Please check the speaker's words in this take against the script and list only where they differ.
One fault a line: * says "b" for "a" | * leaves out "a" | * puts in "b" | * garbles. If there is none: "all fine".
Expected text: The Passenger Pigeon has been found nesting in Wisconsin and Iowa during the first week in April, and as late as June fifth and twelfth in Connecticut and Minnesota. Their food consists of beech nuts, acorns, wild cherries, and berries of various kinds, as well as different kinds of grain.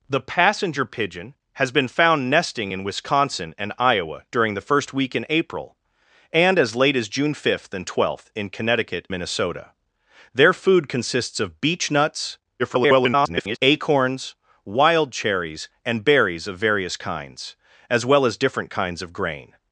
* leaves out "and"
* garbles